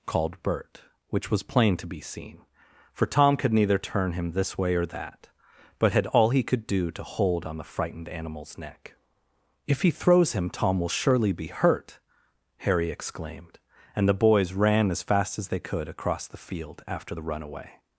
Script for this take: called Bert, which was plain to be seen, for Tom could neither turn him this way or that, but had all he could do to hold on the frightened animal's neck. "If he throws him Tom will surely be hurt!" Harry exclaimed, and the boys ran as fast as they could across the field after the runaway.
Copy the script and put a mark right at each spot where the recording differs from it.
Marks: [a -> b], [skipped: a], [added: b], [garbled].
called Bert, which was plain to be seen, for Tom could neither turn him this way or that, but had all he could do to hold on the frightened animal's neck. "If he throws him Tom will surely be hurt!" Harry exclaimed, and the boys ran as fast as they could across the field after the runaway.